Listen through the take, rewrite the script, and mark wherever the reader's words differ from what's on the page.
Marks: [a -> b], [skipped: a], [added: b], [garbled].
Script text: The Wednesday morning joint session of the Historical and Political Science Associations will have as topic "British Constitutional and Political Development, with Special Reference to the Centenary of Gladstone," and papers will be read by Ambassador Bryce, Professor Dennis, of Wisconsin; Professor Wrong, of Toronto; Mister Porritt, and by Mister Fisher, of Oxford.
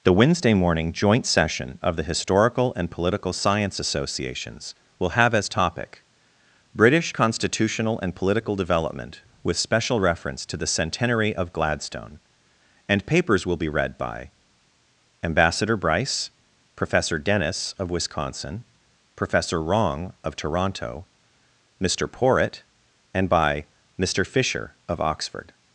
The Wednesday morning joint session of the Historical and Political Science Associations will have as topic "British Constitutional and Political Development, with Special Reference to the Centenary of Gladstone," and papers will be read by Ambassador Bryce, Professor Dennis, of Wisconsin; Professor Wrong, of Toronto; Mister Porritt, and by Mister Fisher, of Oxford.